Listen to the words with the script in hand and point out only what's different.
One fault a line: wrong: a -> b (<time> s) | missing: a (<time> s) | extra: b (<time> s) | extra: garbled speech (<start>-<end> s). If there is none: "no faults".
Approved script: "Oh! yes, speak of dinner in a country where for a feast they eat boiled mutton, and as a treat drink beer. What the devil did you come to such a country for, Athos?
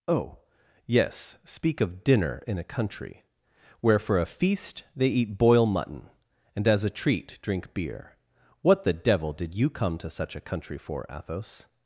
wrong: boiled -> boil (5.4 s)